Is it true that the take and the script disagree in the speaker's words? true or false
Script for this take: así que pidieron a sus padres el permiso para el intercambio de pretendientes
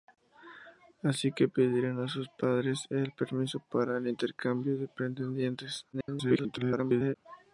true